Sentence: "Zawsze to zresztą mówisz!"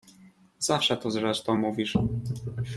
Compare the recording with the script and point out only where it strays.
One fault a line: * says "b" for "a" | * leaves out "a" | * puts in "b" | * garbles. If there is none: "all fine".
all fine